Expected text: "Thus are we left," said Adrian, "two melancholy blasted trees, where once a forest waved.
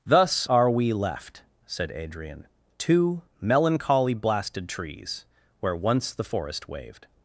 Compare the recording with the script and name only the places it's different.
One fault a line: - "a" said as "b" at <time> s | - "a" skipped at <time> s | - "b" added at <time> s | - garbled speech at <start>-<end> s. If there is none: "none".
- "a" said as "the" at 6.1 s